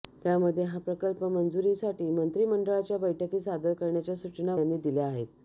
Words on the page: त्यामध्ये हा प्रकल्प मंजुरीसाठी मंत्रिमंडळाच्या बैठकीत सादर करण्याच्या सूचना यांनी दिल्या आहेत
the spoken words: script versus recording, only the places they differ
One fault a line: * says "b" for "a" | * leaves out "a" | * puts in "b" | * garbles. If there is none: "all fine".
all fine